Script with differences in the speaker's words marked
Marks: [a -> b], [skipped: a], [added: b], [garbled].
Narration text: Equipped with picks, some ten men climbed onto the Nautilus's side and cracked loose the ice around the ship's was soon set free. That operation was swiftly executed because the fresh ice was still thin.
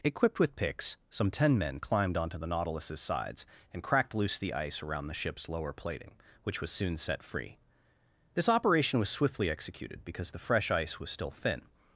Equipped with picks, some ten men climbed onto the Nautilus's [side -> sides] and cracked loose the ice around the ship's [added: lower plating which] was soon set free. [That -> This] operation was swiftly executed because the fresh ice was still thin.